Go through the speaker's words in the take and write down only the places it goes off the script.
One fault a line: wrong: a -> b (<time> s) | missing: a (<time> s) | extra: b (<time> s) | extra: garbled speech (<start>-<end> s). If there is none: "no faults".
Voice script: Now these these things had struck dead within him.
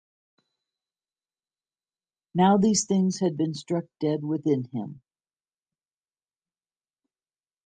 missing: these (2.9 s)
extra: been (3.4 s)